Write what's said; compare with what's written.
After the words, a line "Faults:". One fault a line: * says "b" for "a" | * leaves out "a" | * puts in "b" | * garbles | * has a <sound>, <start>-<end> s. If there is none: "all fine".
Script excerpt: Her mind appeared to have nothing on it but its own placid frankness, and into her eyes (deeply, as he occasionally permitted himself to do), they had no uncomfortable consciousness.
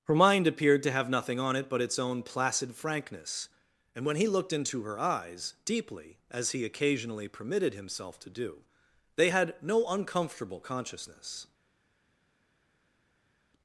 Her mind appeared to have nothing on it but its own placid frankness, and when he looked into her eyes (deeply, as he occasionally permitted himself to do), they had no uncomfortable consciousness.
Faults:
* puts in "when he looked"